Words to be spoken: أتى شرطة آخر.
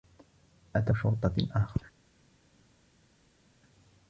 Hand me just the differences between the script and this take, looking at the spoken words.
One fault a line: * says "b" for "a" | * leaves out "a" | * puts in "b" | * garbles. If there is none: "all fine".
all fine